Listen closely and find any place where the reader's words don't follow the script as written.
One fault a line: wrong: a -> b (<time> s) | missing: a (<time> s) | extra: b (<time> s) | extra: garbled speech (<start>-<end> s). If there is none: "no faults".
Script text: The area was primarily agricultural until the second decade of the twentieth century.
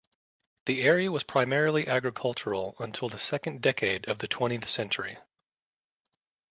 no faults